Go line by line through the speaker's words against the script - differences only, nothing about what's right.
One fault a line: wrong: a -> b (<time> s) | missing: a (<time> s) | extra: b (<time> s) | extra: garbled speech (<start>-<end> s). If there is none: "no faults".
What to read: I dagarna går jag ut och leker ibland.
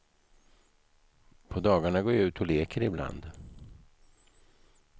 wrong: I -> På (1.5 s)